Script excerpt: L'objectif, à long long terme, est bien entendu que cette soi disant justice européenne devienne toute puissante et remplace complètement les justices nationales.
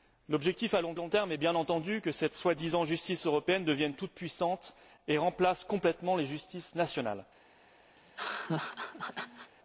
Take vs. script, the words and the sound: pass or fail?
fail